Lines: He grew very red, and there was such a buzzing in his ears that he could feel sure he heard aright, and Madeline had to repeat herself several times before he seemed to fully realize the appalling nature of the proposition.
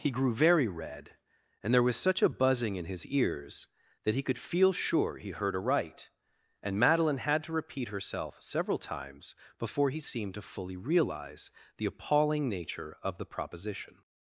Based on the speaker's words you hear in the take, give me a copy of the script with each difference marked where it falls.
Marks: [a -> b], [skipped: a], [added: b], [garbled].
He grew very red, and there was such a buzzing in his ears that he could feel sure he heard aright, and Madeline had to repeat herself several times before he seemed to fully realize the appalling nature of the proposition.